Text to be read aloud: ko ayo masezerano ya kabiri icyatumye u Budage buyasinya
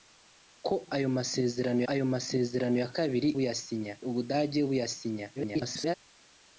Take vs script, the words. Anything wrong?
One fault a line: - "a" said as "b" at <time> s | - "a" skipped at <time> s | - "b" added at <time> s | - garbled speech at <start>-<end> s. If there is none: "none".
- "ayo masezerano" added at 1.9 s
- "icyatumye" said as "buyasinya" at 3.4 s
- garbled speech at 5.4-6.0 s